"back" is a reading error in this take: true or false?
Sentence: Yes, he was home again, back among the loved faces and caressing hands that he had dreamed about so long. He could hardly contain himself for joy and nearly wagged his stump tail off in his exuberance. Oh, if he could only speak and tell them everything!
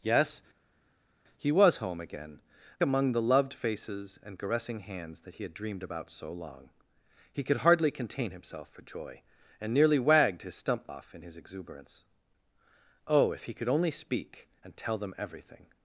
true